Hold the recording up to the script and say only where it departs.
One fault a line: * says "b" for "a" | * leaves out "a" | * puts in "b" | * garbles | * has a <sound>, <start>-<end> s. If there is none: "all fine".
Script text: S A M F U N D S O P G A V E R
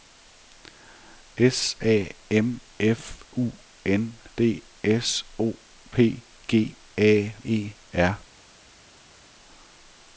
* leaves out "V"